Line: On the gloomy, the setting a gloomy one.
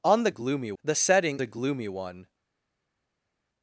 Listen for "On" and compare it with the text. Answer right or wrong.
right